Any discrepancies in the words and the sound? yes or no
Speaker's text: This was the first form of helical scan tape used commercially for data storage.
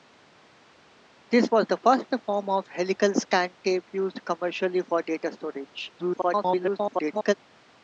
yes